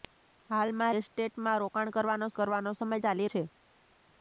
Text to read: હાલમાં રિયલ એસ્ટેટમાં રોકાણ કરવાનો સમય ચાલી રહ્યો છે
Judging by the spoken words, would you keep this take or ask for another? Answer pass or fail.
fail